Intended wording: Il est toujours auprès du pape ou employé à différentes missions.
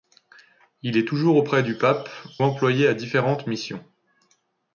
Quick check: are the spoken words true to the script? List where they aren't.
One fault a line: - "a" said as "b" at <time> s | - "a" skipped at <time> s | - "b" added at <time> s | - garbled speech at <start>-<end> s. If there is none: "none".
- "ou" skipped at 2.1 s